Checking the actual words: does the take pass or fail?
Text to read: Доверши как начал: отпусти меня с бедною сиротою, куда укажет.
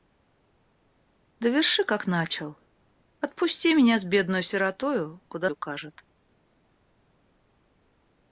pass